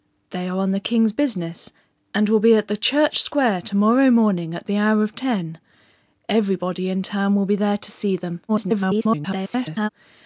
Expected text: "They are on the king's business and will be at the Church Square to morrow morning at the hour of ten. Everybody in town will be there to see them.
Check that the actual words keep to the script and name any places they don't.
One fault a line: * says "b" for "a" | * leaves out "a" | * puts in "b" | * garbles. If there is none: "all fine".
* garbles